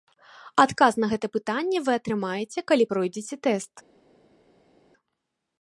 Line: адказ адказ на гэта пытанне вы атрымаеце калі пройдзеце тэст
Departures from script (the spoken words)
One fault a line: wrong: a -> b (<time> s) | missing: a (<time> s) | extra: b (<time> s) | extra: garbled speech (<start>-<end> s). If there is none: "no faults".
missing: адказ (0.9 s)